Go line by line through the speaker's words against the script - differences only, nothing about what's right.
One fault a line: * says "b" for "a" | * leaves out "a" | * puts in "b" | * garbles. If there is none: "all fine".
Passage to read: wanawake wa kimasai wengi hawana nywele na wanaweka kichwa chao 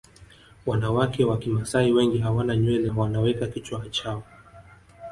* leaves out "na"